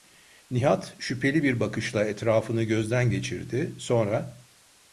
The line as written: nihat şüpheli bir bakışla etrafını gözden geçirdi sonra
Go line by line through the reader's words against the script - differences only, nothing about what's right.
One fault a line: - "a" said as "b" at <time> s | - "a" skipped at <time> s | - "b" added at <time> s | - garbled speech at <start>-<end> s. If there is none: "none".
none